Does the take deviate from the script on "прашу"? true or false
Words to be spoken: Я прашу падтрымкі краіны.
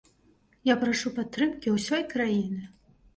false